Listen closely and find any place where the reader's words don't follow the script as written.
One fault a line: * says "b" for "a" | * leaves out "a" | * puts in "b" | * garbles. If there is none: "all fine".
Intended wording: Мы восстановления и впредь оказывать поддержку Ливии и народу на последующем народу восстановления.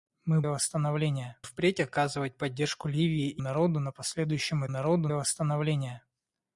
all fine